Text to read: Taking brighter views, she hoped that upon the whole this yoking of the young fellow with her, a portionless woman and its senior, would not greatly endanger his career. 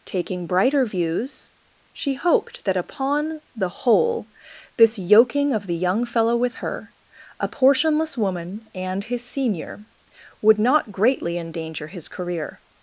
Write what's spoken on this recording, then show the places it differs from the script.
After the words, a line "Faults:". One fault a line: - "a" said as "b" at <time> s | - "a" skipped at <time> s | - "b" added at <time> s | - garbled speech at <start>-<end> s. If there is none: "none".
Taking brighter views, she hoped that upon the whole this yoking of the young fellow with her, a portionless woman and his senior, would not greatly endanger his career.
Faults:
- "its" said as "his" at 9.0 s